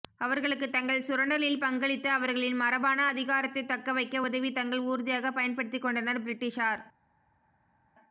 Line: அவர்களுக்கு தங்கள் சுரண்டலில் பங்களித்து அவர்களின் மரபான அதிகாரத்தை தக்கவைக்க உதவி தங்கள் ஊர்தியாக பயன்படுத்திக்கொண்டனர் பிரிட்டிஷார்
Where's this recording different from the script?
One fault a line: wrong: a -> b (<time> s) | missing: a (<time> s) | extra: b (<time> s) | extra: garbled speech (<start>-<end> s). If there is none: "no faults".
no faults